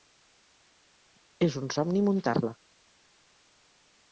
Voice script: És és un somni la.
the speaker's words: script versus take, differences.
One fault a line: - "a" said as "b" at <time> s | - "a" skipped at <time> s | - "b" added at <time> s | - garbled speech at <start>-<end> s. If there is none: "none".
- "és" skipped at 1.6 s
- "muntar" added at 2.1 s